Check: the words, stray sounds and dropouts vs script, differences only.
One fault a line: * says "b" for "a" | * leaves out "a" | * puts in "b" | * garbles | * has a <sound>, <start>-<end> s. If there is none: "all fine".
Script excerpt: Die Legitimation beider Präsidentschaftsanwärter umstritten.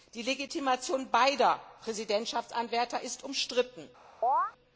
* puts in "ist"
* has a chirp, 4.2-4.5 s